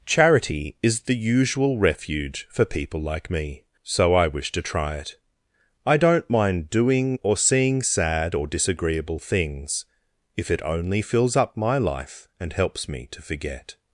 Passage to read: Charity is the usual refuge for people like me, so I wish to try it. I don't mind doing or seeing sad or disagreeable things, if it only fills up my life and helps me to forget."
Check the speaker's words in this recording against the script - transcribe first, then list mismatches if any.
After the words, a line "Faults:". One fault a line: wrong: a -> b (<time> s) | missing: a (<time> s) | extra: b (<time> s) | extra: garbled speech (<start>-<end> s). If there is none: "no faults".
Charity is the usual refuge for people like me, so I wish to try it. I don't mind doing or seeing sad or disagreeable things, if it only fills up my life and helps me to forget."
Faults:
no faults